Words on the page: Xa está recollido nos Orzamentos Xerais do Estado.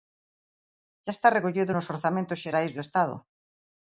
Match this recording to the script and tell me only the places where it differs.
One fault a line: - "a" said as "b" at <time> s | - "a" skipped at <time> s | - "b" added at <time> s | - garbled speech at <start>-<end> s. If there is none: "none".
none